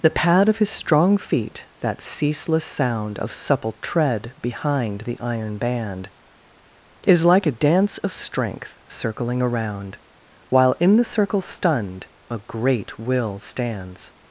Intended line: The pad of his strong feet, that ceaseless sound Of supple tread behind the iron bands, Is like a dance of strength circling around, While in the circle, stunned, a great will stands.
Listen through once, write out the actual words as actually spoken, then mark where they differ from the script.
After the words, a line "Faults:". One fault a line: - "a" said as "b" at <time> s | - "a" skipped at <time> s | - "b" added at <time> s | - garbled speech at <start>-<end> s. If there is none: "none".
The pad of his strong feet, that ceaseless sound Of supple tread behind the iron band, Is like a dance of strength circling around, While in the circle, stunned, a great will stands.
Faults:
- "bands" said as "band" at 5.6 s